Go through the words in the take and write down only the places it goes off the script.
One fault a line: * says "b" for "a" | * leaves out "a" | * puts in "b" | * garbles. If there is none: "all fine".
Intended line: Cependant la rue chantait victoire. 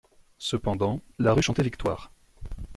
all fine